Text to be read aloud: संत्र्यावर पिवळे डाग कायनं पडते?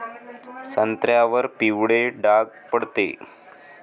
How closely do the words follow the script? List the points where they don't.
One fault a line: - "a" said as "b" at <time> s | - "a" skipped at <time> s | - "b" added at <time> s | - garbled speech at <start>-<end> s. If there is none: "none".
- "कायनं" skipped at 2.5 s